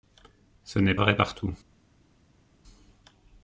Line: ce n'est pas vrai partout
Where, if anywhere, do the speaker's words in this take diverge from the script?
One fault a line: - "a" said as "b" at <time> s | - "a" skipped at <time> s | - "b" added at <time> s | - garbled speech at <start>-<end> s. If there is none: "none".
- "pas" skipped at 0.9 s